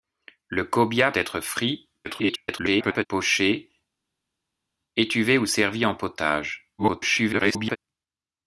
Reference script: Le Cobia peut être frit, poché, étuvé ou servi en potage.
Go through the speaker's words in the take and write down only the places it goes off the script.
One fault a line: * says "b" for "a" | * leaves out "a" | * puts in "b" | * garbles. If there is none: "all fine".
* leaves out "peut"
* garbles
* garbles